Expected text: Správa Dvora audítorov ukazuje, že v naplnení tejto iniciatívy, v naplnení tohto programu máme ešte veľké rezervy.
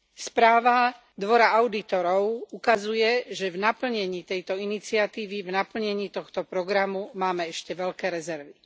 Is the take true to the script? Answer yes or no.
yes